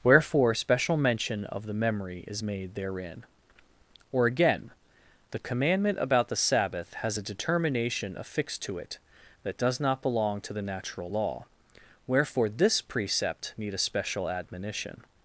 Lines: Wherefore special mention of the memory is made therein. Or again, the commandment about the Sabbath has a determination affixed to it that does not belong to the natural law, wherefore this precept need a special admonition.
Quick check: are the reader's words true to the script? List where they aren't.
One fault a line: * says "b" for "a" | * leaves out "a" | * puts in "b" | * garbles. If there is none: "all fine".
all fine